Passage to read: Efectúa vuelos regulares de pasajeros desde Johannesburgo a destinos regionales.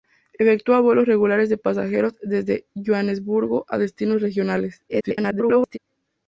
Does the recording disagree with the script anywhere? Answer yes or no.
yes